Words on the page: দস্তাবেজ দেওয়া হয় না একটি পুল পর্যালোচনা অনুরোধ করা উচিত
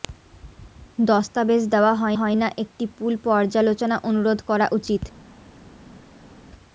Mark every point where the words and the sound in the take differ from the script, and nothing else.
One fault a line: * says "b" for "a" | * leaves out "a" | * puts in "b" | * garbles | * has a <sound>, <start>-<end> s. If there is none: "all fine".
* puts in "হয়"